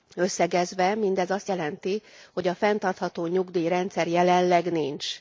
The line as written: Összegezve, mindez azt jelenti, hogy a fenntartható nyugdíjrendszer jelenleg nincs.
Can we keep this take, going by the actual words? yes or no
yes